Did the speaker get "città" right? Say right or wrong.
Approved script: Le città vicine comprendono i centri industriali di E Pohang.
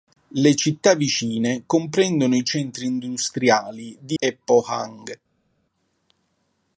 right